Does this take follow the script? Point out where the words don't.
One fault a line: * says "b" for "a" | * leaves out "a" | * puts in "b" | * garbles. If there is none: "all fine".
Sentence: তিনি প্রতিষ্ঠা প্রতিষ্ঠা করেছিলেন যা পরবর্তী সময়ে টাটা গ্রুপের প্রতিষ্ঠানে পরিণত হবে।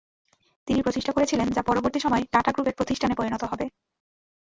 * leaves out "প্রতিষ্ঠা"